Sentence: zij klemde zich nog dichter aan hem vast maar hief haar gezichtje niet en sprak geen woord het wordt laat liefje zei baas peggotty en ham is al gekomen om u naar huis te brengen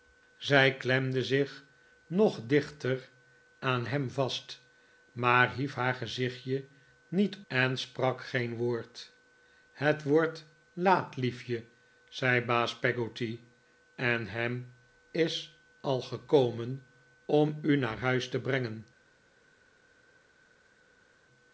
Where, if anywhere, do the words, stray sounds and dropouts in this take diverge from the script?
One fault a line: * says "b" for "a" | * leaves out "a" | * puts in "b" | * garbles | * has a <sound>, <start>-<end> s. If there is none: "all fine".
all fine